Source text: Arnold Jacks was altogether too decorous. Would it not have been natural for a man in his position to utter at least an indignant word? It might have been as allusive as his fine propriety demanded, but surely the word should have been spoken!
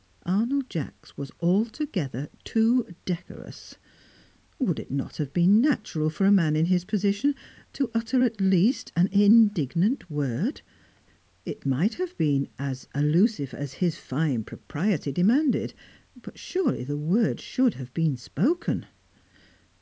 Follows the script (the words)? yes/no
yes